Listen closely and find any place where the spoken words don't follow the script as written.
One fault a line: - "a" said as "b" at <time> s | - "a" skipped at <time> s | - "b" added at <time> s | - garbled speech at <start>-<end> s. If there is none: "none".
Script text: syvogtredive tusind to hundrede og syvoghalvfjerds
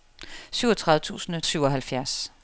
- "to hundrede og" skipped at 1.4 s